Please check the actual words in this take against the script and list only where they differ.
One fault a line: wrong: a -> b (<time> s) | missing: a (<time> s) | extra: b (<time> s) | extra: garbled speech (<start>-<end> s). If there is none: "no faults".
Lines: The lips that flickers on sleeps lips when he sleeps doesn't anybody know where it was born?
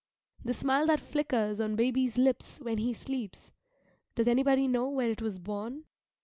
wrong: lips -> smile (0.6 s)
wrong: sleeps -> baby's (1.8 s)
wrong: doesn't -> does (4.2 s)